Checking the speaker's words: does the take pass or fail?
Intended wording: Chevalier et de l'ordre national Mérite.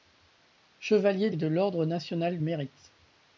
pass